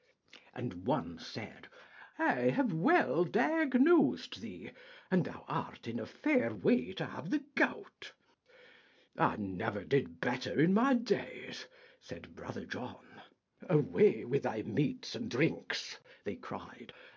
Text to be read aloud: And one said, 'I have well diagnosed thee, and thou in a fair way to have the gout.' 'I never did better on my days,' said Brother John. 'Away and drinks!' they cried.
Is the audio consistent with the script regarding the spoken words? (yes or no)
no